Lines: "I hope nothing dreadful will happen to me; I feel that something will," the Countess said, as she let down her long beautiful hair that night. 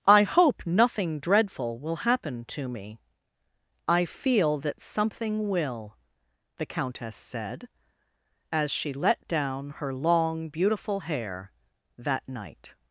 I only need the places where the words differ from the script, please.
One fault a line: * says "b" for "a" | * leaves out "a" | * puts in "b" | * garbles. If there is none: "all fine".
all fine